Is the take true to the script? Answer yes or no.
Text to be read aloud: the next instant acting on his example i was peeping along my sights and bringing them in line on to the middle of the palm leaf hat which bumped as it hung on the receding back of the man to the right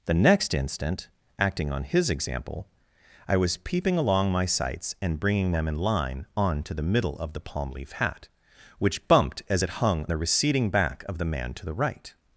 no